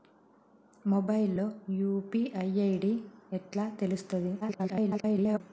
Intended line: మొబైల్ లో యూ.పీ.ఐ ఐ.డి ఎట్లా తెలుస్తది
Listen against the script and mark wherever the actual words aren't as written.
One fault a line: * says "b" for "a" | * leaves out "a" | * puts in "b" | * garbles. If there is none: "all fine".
* garbles